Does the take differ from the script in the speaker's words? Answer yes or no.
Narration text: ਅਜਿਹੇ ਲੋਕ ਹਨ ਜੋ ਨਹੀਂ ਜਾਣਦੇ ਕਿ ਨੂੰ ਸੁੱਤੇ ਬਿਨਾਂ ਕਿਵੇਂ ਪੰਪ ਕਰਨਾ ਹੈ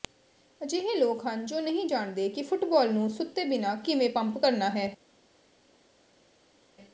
yes